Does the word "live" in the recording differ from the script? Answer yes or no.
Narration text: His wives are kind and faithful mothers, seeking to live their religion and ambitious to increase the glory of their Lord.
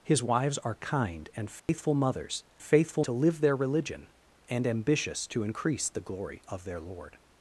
no